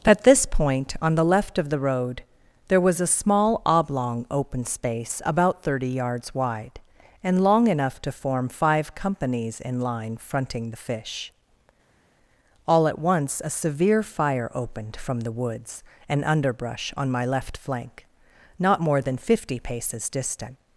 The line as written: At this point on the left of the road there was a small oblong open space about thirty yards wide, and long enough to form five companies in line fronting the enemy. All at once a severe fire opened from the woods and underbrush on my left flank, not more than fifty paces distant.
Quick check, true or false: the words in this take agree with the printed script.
false